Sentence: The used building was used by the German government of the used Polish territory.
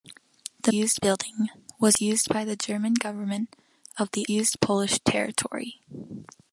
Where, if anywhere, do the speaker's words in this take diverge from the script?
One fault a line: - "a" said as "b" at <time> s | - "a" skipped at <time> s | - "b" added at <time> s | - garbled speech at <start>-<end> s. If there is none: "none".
none